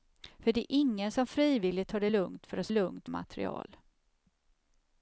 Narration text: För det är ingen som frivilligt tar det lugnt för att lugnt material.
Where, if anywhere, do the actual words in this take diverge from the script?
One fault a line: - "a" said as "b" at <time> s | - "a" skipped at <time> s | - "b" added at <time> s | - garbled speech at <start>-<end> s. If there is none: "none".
none